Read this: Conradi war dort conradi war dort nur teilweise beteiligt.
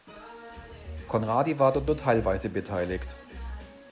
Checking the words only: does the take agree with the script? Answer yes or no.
no